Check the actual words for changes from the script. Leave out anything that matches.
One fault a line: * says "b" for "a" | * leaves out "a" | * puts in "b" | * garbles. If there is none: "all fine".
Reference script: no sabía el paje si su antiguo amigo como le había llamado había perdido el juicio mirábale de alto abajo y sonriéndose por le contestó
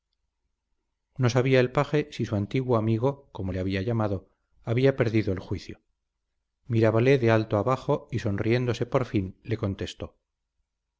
* puts in "fin"